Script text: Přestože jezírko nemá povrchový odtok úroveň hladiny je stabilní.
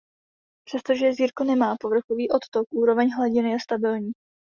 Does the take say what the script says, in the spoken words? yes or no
yes